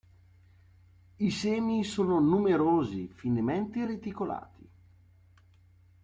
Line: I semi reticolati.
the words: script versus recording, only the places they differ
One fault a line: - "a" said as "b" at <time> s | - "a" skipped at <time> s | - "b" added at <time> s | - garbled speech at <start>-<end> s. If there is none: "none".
- "sono numerosi finemente" added at 1.8 s